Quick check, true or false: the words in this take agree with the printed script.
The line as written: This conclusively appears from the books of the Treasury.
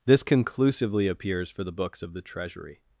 false